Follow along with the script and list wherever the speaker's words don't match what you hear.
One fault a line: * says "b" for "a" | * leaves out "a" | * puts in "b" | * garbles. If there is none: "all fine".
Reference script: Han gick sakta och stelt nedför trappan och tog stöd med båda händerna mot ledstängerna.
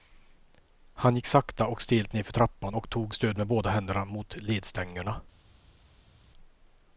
all fine